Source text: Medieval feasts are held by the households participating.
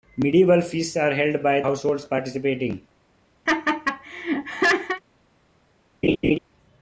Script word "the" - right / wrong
wrong